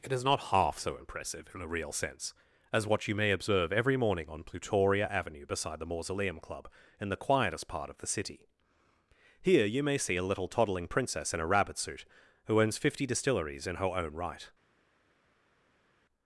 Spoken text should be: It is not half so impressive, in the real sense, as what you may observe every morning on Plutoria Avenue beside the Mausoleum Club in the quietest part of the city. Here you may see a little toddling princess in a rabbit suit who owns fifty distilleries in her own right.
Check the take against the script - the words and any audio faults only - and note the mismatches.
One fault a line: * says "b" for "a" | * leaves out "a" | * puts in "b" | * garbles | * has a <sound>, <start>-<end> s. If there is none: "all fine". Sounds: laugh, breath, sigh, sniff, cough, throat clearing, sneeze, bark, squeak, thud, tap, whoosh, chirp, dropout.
* says "a" for "the"